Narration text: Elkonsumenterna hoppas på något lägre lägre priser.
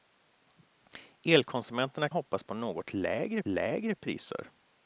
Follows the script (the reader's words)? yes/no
yes